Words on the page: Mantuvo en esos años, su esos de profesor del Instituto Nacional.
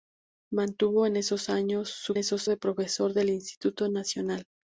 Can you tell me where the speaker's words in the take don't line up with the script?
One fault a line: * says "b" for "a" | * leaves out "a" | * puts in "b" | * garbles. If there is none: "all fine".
all fine